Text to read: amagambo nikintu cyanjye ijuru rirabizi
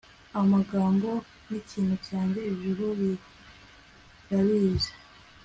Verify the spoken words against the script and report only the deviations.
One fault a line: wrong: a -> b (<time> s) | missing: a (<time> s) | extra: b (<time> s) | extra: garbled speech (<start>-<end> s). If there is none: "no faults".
no faults